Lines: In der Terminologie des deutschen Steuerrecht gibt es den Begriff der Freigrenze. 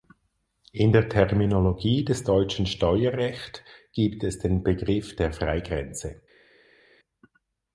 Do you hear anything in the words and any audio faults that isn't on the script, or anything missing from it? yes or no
no